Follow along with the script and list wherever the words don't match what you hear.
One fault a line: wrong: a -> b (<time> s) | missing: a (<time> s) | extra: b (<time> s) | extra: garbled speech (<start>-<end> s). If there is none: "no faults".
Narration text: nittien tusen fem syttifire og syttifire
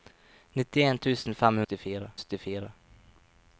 no faults